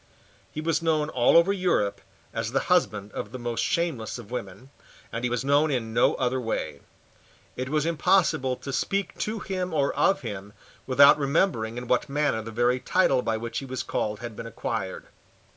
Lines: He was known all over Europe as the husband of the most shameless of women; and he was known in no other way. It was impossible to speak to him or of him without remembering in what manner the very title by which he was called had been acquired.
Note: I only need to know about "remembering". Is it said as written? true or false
true